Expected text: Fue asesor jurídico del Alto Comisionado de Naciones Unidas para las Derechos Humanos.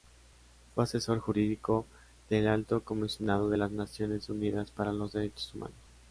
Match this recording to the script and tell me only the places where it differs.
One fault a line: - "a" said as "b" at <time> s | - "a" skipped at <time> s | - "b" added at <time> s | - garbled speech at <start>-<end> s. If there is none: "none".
- "las" added at 3.5 s
- "las" said as "los" at 4.9 s